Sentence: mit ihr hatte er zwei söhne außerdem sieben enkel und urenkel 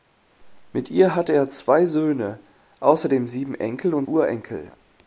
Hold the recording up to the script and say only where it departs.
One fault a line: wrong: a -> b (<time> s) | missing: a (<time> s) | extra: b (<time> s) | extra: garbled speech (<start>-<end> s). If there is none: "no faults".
no faults